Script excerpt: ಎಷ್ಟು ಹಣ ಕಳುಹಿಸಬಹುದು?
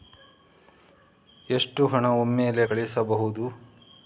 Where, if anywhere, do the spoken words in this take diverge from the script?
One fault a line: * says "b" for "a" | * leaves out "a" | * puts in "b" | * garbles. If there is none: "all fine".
* puts in "ಒಮ್ಮೆಲೇ"